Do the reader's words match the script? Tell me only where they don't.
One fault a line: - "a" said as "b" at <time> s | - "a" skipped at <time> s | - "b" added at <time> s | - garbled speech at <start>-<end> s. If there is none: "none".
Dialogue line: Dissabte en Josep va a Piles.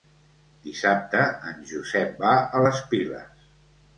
- "les" added at 2.6 s